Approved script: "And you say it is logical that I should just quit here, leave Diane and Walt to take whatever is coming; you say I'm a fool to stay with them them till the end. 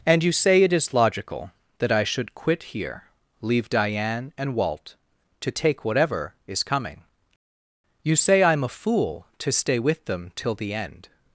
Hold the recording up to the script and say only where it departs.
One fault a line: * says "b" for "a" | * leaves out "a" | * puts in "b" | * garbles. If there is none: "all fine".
* leaves out "just"
* leaves out "them"